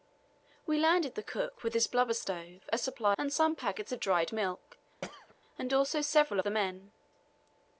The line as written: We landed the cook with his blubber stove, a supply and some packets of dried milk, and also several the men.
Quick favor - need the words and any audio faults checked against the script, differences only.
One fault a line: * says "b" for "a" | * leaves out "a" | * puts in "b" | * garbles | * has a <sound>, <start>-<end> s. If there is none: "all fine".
* has a throat clearing, 5.0-5.4 s